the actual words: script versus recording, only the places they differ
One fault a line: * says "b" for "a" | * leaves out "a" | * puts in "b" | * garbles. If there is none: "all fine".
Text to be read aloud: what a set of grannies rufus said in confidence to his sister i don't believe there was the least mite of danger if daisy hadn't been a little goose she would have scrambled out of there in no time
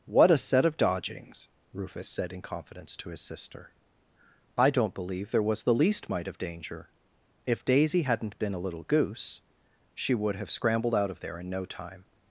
* says "dodgings" for "grannies"